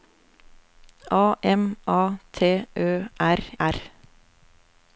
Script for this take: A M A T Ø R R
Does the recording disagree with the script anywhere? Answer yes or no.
no